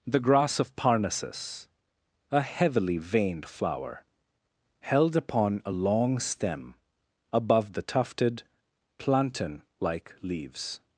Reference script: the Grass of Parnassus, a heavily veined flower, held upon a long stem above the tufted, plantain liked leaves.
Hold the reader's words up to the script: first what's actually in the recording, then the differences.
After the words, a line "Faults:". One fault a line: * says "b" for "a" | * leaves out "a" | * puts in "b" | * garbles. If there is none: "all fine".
the Grass of Parnassus, a heavily veined flower, held upon a long stem above the tufted, plantain like leaves.
Faults:
* says "like" for "liked"